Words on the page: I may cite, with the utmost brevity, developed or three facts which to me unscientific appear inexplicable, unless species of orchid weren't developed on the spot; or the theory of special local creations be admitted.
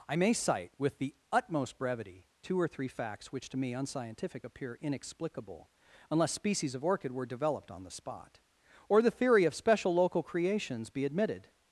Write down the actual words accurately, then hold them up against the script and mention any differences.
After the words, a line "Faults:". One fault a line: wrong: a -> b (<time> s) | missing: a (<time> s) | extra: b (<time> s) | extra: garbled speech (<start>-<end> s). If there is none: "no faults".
I may cite, with the utmost brevity, two or three facts which to me unscientific appear inexplicable, unless species of orchid were developed on the spot; or the theory of special local creations be admitted.
Faults:
wrong: developed -> two (2.4 s)
wrong: weren't -> were (7.1 s)